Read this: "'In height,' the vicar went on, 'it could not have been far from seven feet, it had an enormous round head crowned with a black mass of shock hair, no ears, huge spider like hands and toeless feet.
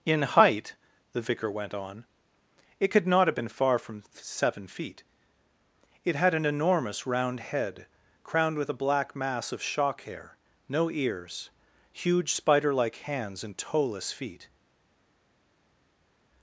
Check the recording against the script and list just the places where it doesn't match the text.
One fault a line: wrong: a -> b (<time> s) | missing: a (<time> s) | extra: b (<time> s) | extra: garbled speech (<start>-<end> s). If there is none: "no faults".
no faults